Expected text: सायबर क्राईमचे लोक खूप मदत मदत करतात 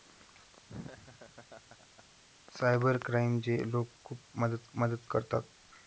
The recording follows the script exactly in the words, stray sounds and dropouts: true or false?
false